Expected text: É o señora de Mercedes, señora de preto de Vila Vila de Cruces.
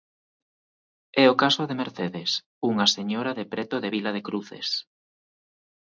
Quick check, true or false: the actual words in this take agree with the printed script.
false